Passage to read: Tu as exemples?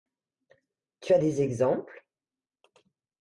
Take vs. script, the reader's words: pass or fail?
fail